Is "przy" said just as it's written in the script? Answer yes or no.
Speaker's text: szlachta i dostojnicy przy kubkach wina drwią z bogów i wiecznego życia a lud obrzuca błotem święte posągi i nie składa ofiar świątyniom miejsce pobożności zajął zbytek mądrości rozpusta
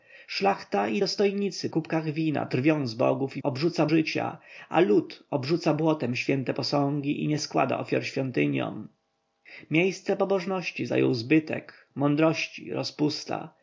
no